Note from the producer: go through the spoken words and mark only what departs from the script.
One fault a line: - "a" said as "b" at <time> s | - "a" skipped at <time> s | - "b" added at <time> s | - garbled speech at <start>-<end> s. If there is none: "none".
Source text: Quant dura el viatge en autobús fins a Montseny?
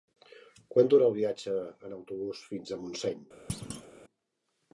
none